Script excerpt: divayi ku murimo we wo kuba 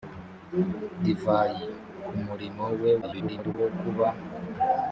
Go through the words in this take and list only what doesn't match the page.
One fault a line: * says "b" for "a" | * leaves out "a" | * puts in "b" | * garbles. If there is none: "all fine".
* garbles